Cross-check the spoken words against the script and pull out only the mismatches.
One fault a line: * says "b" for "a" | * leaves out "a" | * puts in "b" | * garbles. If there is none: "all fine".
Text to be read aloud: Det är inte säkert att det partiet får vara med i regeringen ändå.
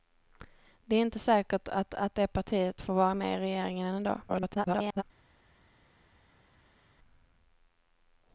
* puts in "att"
* garbles